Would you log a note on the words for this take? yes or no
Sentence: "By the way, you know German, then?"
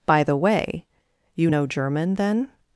no